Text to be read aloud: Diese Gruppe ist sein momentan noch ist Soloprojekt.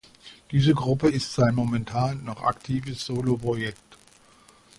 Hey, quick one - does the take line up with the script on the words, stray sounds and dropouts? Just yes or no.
no